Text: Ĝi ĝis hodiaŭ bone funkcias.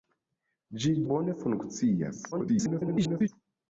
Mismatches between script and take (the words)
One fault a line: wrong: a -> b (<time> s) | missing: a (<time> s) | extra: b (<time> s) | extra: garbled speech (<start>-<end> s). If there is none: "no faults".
missing: ĝis hodiaŭ (0.9 s)
extra: garbled speech (2.3-3.3 s)